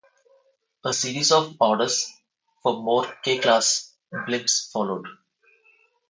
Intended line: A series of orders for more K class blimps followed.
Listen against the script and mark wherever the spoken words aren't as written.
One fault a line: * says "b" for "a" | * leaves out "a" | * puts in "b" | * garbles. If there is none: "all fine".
all fine